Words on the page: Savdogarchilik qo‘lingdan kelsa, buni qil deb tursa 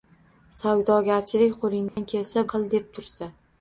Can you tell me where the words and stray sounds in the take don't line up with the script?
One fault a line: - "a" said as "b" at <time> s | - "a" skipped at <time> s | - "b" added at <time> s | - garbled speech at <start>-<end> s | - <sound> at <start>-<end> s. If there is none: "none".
- dropout at 1.9-2.0 s
- "buni" skipped at 2.4 s